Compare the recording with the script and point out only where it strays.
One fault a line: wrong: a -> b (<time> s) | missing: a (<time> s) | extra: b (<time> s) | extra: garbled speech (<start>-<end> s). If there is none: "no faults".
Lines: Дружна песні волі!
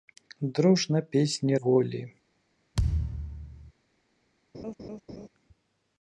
no faults